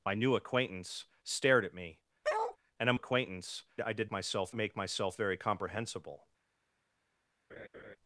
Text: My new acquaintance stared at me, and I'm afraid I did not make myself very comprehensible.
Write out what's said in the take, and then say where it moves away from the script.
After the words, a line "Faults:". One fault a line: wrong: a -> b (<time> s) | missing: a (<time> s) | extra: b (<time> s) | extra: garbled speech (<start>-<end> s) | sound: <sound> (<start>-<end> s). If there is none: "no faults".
My new acquaintance stared at me, and I'm acquaintance I did myself make myself very comprehensible.
Faults:
sound: bark (2.2-2.6 s)
wrong: afraid -> acquaintance (2.9 s)
wrong: not -> myself (4.1 s)
sound: laugh (7.5-8.0 s)